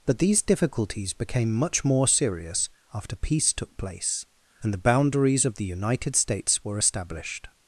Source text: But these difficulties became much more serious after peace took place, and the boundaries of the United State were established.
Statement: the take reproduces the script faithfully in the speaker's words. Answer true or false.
false